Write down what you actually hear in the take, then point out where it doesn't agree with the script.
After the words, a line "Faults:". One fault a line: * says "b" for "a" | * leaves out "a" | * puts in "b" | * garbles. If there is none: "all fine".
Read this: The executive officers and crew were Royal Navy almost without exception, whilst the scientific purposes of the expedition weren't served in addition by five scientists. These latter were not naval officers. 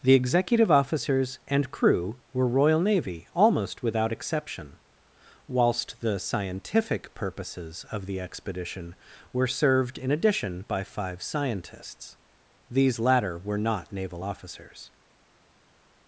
The executive officers and crew were Royal Navy almost without exception, whilst the scientific purposes of the expedition were served in addition by five scientists. These latter were not naval officers.
Faults:
* says "were" for "weren't"